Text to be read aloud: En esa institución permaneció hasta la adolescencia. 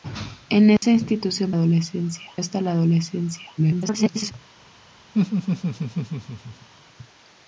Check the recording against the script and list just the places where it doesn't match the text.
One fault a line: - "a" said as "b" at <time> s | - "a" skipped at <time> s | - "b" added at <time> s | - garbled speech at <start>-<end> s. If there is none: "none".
- "permaneció" said as "adolescencia" at 1.5 s
- garbled speech at 3.6-4.3 s